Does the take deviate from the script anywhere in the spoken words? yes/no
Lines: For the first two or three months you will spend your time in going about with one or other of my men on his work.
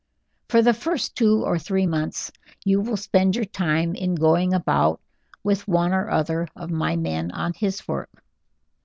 no